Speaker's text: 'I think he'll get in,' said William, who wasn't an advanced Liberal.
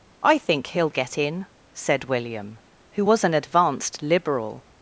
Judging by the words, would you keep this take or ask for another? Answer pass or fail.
fail